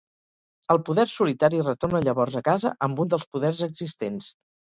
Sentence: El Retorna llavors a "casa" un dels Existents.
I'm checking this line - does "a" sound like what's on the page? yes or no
yes